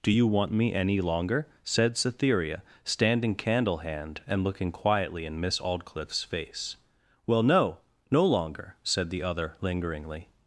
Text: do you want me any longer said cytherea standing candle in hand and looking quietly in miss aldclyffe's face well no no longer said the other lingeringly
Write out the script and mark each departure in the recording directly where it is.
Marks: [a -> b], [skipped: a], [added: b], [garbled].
do you want me any longer said cytherea standing candle [skipped: in] hand and looking quietly in miss aldclyffe's face well no no longer said the other lingeringly